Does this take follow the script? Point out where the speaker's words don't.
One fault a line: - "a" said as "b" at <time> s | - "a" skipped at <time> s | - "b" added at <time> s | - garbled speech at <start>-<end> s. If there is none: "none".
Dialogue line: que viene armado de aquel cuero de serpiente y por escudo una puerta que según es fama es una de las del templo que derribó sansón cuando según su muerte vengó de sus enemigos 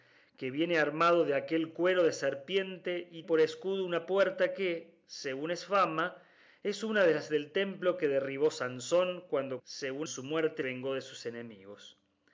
none